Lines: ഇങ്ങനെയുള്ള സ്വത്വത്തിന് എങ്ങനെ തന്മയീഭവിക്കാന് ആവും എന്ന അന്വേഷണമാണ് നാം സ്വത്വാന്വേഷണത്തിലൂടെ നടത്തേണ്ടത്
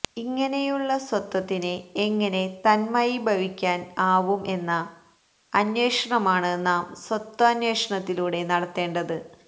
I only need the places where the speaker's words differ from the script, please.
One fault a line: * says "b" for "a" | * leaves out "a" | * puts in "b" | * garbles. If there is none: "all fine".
all fine